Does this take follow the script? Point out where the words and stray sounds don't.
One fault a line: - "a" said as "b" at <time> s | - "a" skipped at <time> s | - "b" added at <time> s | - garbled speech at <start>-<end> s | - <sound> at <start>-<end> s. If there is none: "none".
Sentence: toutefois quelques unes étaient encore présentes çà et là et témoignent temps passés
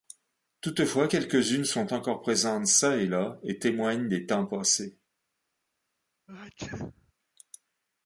- "étaient" said as "sont" at 1.6 s
- "des" added at 4.1 s
- sneeze at 6.3-7.1 s